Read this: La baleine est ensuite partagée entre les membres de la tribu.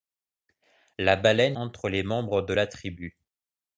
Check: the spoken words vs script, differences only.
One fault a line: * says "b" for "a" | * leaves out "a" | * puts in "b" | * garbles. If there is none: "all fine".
* leaves out "est ensuite partagée"